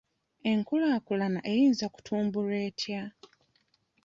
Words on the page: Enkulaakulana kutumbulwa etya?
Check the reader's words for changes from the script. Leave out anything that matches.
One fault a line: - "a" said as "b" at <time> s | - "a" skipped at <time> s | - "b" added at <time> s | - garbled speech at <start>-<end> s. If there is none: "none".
- "eyinza" added at 1.5 s